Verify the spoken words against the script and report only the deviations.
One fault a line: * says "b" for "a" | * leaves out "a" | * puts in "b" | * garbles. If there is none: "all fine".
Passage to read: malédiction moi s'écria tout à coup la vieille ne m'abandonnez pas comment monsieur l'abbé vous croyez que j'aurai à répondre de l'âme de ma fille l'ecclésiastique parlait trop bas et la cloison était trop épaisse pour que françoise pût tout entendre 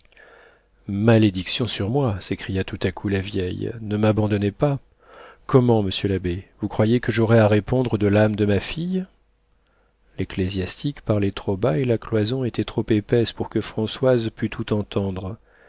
* puts in "sur"